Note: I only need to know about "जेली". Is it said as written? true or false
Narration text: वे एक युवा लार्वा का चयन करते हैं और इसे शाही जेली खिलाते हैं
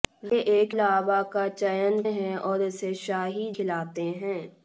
false